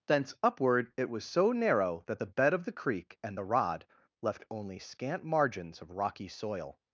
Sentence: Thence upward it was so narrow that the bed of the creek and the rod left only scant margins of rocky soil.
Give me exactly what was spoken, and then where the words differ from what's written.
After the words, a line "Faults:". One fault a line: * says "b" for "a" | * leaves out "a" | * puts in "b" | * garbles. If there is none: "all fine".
Thence upward it was so narrow that the bed of the creek and the rod left only scant margins of rocky soil.
Faults:
all fine